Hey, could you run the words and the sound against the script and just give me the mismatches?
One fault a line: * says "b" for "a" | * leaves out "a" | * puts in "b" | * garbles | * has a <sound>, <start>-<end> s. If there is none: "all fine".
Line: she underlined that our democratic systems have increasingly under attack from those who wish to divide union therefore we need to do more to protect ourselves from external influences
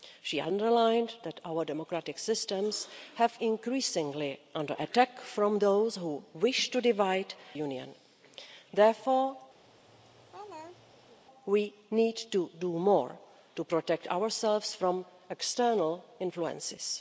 * has a laugh, 9.6-11.2 s